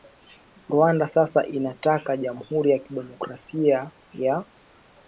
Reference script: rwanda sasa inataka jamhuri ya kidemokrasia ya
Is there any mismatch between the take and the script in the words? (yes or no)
no